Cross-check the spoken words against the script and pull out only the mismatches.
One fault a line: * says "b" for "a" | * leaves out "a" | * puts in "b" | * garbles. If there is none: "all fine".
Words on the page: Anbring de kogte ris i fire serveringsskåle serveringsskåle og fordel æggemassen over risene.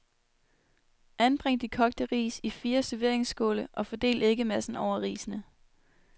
* leaves out "serveringsskåle"